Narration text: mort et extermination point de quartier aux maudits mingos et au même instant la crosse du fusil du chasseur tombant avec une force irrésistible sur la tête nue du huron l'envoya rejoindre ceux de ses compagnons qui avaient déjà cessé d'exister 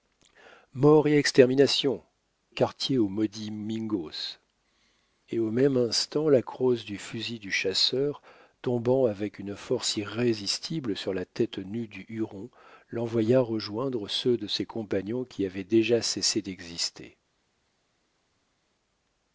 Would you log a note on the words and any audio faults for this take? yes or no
yes